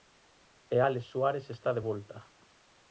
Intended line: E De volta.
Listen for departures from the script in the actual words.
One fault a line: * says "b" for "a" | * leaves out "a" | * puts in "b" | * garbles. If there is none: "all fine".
* puts in "Álex Suárez está"